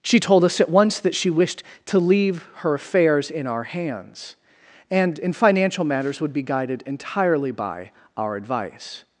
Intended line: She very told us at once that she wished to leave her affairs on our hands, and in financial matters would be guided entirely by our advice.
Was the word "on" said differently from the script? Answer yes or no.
yes